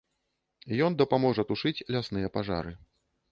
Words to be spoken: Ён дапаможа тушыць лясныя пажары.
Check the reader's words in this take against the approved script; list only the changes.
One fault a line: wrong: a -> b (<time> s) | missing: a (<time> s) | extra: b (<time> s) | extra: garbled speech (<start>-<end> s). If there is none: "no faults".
no faults